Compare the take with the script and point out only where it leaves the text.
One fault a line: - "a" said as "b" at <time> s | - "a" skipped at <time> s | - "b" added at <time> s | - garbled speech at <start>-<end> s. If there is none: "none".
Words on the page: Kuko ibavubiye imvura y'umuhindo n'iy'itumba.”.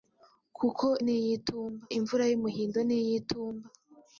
- "ibavubiye" said as "n'iy'itumba" at 1.0 s